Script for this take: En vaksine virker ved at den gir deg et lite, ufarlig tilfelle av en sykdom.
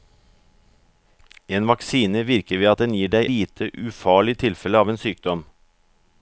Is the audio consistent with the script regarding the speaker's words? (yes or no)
no